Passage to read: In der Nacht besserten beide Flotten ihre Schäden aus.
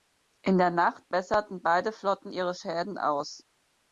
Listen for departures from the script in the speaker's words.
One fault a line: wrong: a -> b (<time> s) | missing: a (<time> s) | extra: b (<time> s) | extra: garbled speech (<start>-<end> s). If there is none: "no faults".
no faults